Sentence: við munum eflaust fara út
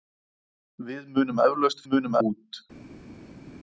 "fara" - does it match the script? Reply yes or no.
no